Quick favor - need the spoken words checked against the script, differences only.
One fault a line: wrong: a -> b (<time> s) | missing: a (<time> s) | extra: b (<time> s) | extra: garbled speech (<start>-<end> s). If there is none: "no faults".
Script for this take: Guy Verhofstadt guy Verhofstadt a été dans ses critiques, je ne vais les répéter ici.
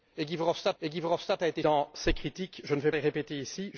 no faults